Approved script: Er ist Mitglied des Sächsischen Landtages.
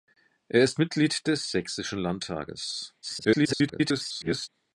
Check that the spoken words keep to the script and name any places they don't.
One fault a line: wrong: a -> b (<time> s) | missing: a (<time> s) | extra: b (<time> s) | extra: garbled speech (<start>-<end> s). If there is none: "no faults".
extra: garbled speech (3.0-4.5 s)